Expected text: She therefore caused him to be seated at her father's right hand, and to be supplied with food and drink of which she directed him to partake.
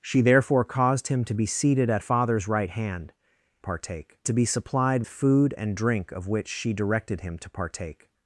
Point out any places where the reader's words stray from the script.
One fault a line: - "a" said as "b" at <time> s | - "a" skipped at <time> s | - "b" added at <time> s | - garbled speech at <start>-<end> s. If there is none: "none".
- "her" skipped at 2.0 s
- "and" said as "partake" at 3.6 s
- "with" skipped at 5.0 s